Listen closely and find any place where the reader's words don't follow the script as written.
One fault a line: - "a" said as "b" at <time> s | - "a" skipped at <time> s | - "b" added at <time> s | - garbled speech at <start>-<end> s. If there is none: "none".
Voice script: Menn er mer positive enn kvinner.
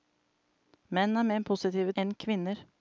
none